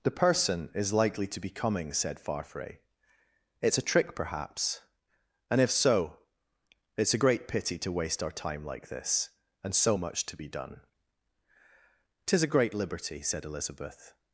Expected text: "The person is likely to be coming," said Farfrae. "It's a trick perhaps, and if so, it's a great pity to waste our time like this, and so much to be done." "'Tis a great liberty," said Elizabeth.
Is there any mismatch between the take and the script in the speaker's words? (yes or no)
no